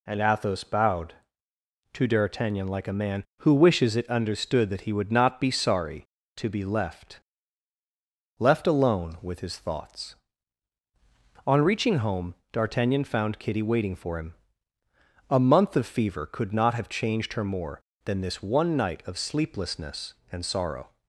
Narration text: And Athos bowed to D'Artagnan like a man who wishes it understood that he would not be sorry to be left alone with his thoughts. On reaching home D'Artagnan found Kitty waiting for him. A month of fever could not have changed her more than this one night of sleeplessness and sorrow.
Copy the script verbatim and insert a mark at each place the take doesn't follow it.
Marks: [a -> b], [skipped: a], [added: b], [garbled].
And Athos bowed to D'Artagnan like a man who wishes it understood that he would not be sorry to be left [added: left] alone with his thoughts. On reaching home D'Artagnan found Kitty waiting for him. A month of fever could not have changed her more than this one night of sleeplessness and sorrow.